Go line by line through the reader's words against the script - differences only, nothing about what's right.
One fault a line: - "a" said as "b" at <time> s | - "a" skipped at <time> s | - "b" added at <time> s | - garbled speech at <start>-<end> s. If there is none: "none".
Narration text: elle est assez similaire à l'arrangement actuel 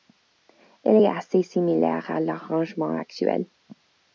none